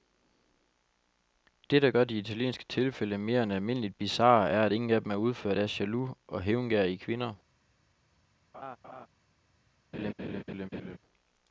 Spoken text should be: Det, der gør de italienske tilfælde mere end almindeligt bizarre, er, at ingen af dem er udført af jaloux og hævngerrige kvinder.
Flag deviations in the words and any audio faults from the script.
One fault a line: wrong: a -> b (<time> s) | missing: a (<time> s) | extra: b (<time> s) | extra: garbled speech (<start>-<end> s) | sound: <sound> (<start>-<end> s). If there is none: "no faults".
sound: laugh (8.5-9.1 s)
sound: laugh (9.9-11.0 s)